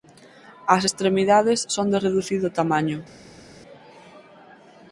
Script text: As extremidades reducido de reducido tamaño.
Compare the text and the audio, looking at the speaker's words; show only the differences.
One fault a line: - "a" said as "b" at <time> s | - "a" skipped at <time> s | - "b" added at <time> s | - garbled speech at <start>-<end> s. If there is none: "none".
- "reducido" said as "son" at 1.8 s